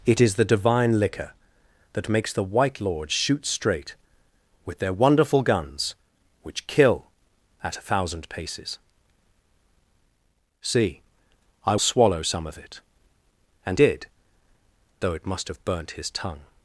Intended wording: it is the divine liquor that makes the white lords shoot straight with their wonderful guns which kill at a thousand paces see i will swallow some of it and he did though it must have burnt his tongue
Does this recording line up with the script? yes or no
no